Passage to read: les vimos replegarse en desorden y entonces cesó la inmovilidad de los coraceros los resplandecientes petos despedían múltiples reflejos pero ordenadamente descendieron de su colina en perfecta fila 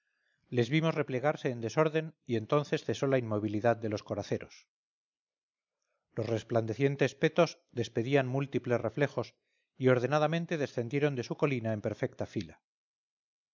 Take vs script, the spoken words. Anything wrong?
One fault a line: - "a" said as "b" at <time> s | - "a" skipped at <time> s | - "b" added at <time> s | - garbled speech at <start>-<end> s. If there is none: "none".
- "pero" said as "y" at 9.8 s